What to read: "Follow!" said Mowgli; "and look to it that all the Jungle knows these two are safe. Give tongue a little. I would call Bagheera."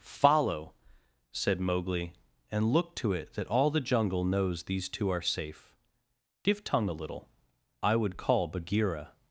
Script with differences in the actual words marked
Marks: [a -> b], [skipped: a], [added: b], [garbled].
"Follow!" said Mowgli; "and look to it that all the Jungle knows these two are safe. Give tongue a little. I would call Bagheera."